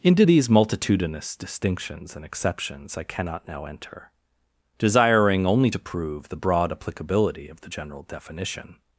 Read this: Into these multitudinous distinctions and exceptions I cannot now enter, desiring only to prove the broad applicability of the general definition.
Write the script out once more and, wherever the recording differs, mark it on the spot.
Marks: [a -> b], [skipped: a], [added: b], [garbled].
Into these multitudinous distinctions and exceptions I cannot now enter, desiring only to prove the broad applicability of the general definition.